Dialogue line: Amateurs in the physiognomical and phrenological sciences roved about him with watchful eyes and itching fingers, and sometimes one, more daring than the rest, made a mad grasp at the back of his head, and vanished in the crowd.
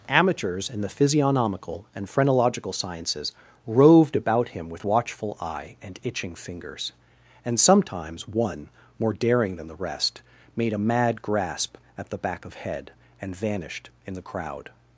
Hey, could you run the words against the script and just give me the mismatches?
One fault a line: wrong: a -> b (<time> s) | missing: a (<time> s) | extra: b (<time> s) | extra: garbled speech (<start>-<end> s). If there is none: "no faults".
wrong: eyes -> eye (5.4 s)
missing: his (12.6 s)